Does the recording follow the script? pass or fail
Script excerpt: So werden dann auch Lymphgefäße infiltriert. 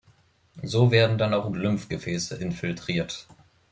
pass